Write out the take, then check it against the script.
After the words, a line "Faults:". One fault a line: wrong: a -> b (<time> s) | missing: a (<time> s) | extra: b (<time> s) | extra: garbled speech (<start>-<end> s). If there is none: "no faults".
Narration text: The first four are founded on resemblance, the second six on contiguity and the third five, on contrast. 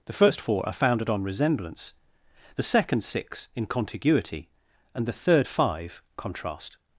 The first four are founded on resemblance, the second six in contiguity and the third five, contrast.
Faults:
wrong: on -> in (3.5 s)
missing: on (6.0 s)